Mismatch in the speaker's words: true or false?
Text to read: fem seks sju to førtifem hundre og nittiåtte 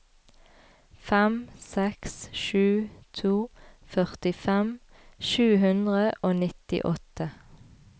true